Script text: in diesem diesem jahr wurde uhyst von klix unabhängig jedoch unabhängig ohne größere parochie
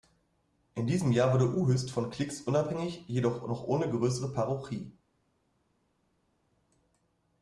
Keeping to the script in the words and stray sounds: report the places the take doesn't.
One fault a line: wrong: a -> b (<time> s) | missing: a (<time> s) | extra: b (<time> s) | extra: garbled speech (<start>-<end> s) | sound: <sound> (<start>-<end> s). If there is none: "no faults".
missing: diesem (1.1 s)
wrong: unabhängig -> noch (3.5 s)